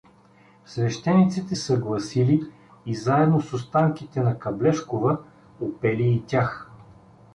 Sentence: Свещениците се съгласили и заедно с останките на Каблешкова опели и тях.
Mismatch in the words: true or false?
true